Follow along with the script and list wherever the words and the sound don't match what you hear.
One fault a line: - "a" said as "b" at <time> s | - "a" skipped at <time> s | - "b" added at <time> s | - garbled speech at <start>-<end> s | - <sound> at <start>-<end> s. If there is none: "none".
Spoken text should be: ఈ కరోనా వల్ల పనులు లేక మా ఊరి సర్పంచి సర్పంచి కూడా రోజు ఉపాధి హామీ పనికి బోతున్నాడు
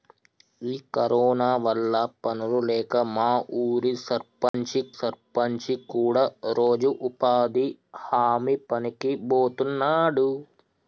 - dropout at 4.5-4.5 s